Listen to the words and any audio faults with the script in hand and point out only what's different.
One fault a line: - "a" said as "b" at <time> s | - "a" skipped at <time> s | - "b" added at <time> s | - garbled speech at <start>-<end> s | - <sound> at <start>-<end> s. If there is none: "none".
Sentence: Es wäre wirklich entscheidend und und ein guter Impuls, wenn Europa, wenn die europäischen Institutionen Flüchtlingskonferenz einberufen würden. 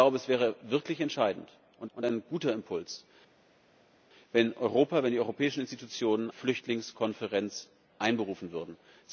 none